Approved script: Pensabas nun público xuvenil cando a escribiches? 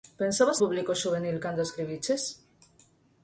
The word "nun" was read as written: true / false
false